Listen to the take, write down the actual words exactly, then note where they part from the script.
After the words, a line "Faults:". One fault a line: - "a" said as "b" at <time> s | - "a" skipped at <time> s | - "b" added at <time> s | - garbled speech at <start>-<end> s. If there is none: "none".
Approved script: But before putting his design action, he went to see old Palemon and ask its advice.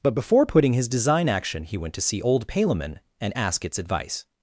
But before putting his design action, he went to see old Palemon and ask its advice.
Faults:
none